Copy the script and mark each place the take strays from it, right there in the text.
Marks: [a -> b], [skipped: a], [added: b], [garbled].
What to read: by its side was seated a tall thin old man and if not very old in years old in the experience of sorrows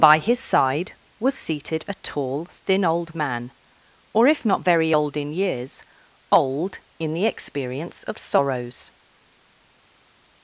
by [its -> his] side was seated a tall thin old man [and -> or] if not very old in years old in the experience of sorrows